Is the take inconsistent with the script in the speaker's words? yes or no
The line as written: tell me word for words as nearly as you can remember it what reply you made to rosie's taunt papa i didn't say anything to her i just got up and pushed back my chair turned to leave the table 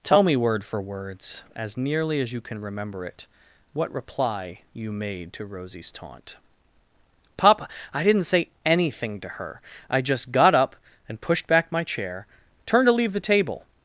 no